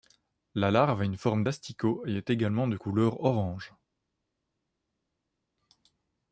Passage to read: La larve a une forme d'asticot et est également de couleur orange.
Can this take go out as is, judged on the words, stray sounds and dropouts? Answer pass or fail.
pass